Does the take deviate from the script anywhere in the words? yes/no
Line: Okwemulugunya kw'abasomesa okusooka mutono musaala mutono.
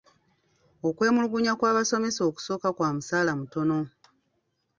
yes